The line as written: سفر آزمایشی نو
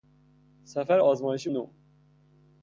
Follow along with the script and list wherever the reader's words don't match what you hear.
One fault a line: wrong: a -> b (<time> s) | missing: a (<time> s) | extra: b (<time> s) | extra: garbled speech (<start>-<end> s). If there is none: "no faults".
no faults